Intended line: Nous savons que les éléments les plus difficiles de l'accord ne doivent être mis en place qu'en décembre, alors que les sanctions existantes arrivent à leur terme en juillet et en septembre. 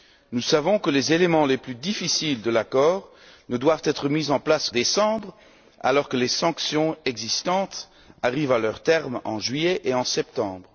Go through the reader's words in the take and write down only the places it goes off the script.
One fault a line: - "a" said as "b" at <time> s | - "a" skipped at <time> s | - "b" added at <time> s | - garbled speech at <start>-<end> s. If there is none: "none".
- "qu'en" skipped at 4.7 s